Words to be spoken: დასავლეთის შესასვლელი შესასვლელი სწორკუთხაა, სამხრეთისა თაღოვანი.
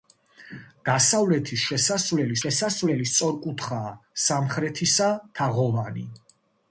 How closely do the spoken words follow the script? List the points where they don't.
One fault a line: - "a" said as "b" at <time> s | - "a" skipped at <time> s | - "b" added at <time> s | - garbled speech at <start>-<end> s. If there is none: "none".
none